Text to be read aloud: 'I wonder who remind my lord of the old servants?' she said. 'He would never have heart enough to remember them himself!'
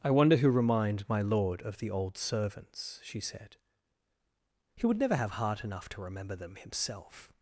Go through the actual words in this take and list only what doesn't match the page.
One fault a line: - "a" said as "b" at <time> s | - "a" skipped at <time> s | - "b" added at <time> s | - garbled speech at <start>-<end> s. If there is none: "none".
none